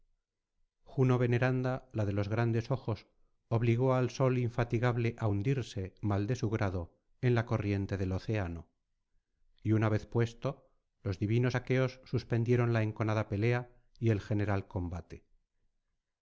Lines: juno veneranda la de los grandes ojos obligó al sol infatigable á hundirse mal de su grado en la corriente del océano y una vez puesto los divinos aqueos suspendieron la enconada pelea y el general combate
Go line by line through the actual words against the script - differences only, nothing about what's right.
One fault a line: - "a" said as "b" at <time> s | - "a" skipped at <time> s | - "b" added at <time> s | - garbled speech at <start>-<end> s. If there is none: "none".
none